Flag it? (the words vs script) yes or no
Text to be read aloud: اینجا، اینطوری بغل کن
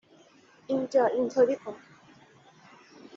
yes